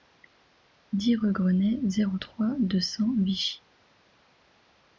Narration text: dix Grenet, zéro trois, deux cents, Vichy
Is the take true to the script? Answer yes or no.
no